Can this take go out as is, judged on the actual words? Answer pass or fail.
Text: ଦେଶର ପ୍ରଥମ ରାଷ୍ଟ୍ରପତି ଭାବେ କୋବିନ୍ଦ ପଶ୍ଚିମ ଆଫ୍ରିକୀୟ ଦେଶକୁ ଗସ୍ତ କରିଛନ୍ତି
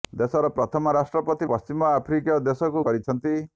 fail